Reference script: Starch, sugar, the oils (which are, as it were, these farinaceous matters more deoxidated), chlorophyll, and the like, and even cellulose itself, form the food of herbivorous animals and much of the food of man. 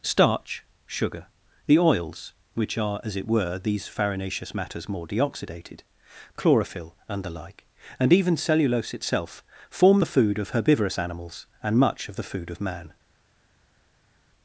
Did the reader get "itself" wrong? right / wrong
right